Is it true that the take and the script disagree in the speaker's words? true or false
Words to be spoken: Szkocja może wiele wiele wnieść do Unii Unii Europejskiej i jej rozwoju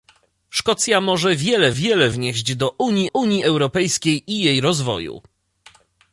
false